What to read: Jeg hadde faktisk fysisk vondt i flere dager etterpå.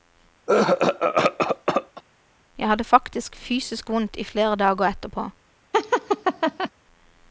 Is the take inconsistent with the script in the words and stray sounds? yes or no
yes